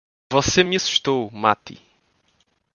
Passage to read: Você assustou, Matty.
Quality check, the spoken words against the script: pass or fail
fail